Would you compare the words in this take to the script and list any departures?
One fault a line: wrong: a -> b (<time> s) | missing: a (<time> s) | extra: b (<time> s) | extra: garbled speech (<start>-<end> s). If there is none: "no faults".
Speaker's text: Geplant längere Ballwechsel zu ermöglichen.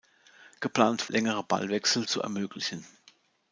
no faults